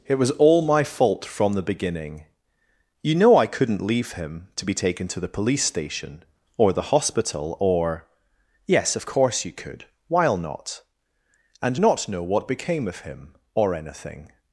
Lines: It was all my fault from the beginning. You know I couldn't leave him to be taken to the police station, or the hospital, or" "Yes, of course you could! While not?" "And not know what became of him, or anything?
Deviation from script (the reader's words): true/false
false